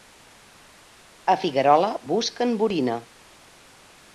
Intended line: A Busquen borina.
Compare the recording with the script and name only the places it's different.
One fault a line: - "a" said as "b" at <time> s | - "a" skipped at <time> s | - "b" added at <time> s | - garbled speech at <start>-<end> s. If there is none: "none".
- "Figuerola" added at 1.4 s